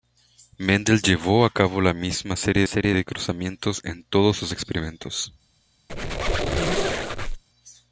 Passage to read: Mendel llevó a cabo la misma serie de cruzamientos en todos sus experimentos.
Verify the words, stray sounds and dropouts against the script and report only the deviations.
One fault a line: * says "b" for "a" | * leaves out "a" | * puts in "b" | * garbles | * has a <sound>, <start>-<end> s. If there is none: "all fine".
* puts in "serie"
* has a squeak, 5.9-7.4 s